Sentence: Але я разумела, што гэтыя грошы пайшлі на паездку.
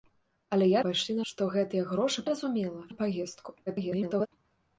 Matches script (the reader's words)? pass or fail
fail